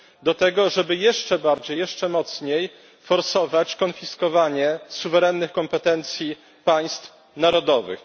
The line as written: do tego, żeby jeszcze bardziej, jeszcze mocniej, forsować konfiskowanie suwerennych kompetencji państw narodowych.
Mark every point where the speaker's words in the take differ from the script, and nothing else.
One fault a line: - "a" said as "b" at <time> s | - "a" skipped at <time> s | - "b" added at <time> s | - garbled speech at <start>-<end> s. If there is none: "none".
none